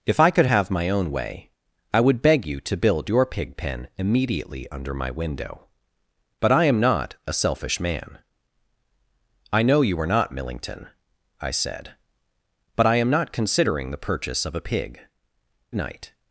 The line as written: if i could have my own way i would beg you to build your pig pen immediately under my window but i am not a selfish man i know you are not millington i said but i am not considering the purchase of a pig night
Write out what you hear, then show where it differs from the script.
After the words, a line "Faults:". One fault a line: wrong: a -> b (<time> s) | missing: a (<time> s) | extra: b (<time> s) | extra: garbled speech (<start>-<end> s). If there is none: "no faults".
if i could have my own way i would beg you to build your pig pen immediately under my window but i am not a selfish man i know you are not millington i said but i am not considering the purchase of a pig night
Faults:
no faults